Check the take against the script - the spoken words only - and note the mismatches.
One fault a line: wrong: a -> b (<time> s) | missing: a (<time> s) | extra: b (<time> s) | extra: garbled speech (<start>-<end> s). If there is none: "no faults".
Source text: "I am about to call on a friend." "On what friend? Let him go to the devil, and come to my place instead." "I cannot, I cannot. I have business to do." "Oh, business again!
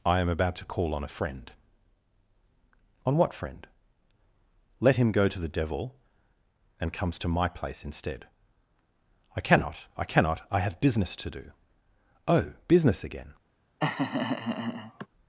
wrong: come -> comes (6.9 s)